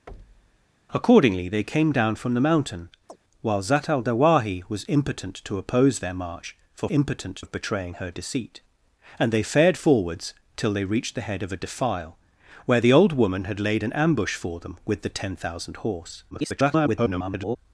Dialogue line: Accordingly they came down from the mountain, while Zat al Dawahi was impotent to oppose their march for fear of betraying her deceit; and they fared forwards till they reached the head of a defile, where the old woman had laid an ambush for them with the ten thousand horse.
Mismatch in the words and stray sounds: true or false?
true